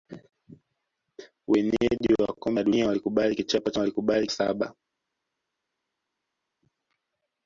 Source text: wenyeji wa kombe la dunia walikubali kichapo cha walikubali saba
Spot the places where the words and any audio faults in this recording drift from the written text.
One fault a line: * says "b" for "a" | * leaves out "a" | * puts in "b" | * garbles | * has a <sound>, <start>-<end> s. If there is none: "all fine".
all fine